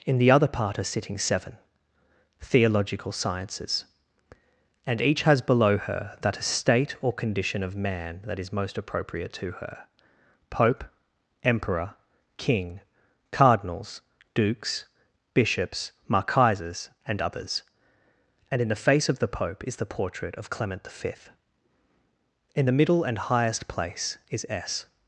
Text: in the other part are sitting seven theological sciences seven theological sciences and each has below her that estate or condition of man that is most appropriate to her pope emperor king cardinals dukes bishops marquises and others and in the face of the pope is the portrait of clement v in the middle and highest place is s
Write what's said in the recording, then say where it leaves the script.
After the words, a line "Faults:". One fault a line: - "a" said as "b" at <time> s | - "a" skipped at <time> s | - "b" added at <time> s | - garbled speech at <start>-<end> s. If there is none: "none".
in the other part are sitting seven theological sciences and each has below her that estate or condition of man that is most appropriate to her pope emperor king cardinals dukes bishops marquises and others and in the face of the pope is the portrait of clement v in the middle and highest place is s
Faults:
- "seven theological sciences" skipped at 3.9 s